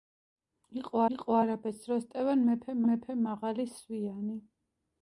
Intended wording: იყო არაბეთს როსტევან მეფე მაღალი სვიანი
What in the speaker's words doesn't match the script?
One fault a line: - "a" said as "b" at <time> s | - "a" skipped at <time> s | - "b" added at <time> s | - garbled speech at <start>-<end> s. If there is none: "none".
- "იყო" added at 1.1 s
- "მეფე" added at 2.9 s